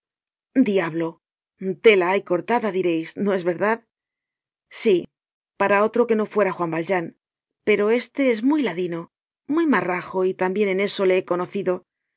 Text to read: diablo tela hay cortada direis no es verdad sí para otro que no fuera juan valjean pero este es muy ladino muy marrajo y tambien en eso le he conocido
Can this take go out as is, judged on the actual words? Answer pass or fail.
pass